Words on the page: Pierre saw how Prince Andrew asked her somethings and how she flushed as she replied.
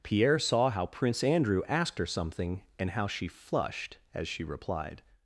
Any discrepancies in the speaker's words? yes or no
yes